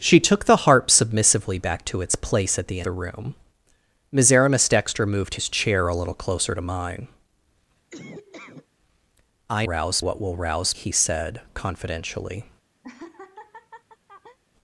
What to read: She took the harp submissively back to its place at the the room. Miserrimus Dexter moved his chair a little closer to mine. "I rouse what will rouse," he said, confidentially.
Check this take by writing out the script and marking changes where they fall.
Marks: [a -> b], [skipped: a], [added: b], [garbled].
She took the harp submissively back to its place at the the room. Miserrimus Dexter moved his chair a little closer to mine. "I rouse what will rouse," he said, confidentially.